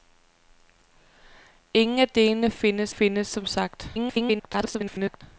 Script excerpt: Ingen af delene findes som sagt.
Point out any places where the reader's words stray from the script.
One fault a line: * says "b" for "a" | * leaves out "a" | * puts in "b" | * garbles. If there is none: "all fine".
* puts in "findes"
* garbles